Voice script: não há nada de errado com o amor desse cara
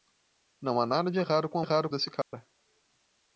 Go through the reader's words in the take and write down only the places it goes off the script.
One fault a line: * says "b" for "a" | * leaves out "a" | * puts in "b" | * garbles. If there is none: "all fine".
* says "errado" for "amor"